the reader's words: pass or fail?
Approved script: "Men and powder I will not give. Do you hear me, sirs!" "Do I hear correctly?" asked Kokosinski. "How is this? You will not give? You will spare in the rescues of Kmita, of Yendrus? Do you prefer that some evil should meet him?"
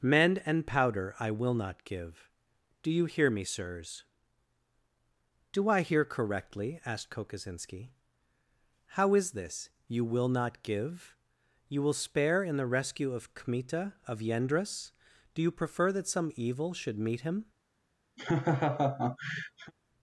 fail